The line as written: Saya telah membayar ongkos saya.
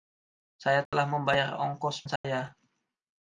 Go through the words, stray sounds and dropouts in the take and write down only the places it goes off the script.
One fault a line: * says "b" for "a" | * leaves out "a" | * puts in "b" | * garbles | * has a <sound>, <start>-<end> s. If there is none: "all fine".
* has a dropout, 0.9-0.9 s
* has a dropout, 2.2-2.2 s